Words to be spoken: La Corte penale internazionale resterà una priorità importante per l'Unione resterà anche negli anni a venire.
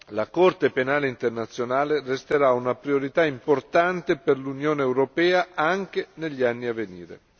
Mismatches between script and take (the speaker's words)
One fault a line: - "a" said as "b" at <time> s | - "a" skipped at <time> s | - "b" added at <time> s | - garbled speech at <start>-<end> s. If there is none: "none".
- "resterà" said as "europea" at 4.8 s